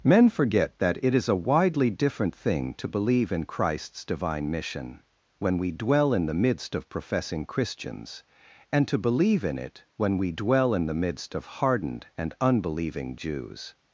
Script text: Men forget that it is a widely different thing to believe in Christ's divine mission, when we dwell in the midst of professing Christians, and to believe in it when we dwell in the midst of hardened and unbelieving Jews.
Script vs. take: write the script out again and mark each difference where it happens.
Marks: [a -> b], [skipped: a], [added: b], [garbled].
Men forget that it is a widely different thing to believe in Christ's divine mission, when we dwell in the midst of professing Christians, and to believe in it when we dwell in the midst of hardened and unbelieving Jews.